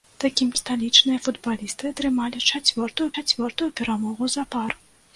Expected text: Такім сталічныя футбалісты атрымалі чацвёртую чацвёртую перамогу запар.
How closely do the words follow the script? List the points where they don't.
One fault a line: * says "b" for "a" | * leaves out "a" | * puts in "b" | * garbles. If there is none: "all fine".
all fine